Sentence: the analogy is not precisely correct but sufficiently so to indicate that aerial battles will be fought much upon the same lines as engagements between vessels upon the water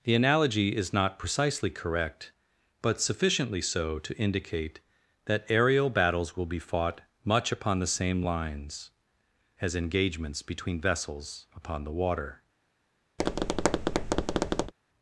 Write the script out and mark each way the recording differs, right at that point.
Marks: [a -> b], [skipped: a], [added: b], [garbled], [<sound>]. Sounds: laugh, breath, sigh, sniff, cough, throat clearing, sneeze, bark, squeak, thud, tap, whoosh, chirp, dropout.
the analogy is not precisely correct but sufficiently so to indicate that aerial battles will be fought much upon the same lines as engagements between vessels upon the water [tap]